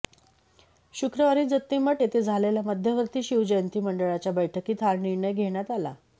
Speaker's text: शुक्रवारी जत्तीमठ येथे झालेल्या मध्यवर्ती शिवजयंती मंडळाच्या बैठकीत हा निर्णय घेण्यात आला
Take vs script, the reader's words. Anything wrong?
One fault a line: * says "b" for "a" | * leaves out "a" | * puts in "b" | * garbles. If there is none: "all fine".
all fine